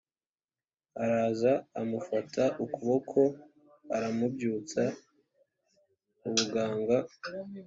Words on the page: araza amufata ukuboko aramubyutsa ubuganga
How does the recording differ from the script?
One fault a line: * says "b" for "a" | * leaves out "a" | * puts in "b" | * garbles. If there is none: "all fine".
all fine